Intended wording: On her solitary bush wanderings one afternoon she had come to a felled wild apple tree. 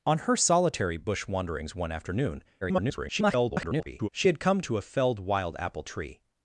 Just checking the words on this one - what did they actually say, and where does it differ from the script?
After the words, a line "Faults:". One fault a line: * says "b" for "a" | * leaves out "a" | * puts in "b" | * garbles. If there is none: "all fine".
On her solitary bush wanderings one afternoon [garbled] she had come to a felled wild apple tree.
Faults:
* garbles